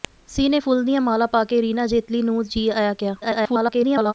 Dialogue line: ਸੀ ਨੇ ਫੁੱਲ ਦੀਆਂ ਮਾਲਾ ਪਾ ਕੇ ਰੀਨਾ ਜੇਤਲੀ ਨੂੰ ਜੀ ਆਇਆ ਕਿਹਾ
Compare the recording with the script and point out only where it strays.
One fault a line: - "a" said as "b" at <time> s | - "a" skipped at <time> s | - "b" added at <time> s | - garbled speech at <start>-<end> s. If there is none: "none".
- garbled speech at 3.2-4.1 s